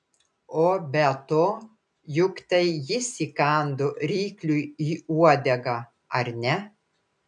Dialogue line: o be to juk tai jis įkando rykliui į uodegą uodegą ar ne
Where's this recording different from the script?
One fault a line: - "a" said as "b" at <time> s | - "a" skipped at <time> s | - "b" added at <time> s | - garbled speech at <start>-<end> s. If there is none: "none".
- "uodegą" skipped at 5.8 s